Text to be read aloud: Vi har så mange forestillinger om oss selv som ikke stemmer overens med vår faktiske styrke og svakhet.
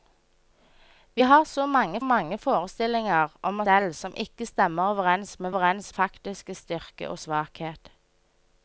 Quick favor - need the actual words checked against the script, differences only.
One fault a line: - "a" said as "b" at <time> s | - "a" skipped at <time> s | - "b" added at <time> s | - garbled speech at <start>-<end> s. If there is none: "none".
- "mange" added at 2.0 s
- "oss" skipped at 3.6 s
- "vår" said as "overens" at 5.5 s